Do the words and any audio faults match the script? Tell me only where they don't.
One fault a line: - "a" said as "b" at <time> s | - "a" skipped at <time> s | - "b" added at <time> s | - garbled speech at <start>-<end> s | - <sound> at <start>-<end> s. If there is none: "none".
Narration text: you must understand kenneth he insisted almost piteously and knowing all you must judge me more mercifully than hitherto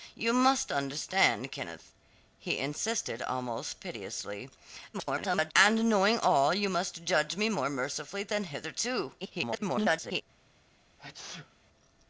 - garbled speech at 4.9-5.5 s
- garbled speech at 9.2-10.2 s
- sneeze at 11.0-11.6 s